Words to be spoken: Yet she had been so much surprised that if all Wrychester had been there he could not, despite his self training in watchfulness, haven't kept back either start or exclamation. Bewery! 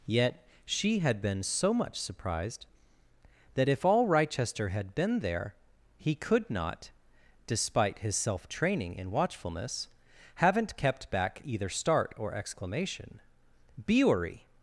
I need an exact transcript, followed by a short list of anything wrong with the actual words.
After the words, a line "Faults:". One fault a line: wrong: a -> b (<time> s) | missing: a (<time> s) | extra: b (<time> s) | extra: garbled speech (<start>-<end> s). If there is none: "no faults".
Yet she had been so much surprised that if all Wrychester had been there he could not, despite his self training in watchfulness, haven't kept back either start or exclamation. Bewery!
Faults:
no faults